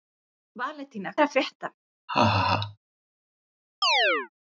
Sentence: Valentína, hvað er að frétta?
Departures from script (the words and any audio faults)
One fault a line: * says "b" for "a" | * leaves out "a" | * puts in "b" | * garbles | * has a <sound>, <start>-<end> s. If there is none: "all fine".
* leaves out "hvað"
* has a laugh, 2.1-2.8 s
* has a chirp, 3.8-4.3 s